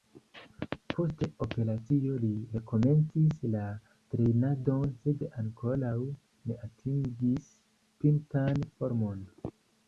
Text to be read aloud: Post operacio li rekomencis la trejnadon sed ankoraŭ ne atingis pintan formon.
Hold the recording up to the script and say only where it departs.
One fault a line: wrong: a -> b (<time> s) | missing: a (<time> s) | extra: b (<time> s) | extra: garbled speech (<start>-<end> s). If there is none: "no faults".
no faults